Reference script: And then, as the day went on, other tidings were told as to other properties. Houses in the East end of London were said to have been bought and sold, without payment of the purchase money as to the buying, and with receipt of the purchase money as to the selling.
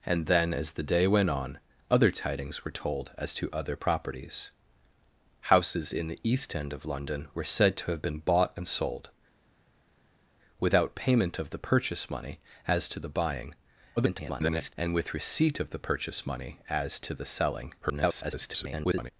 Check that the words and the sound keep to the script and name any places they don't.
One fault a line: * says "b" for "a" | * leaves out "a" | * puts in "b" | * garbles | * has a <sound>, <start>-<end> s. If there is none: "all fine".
* garbles
* garbles